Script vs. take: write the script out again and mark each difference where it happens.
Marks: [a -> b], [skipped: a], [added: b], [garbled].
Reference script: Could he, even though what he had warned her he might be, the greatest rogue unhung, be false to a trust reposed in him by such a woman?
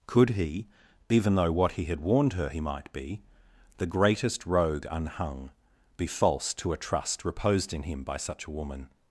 Could he, even though what he had warned her he might be, the greatest rogue unhung, be false to a trust reposed in him by such a woman?